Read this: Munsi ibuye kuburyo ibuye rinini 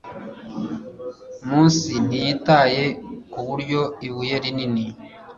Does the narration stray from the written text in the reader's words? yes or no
yes